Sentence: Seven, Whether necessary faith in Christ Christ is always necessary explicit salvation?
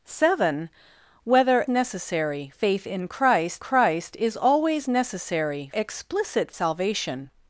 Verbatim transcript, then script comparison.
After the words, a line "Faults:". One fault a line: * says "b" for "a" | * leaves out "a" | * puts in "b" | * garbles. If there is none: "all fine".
Seven, Whether necessary faith in Christ Christ is always necessary explicit salvation?
Faults:
all fine